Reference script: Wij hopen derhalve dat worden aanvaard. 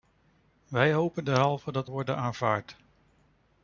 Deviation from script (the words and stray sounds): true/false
false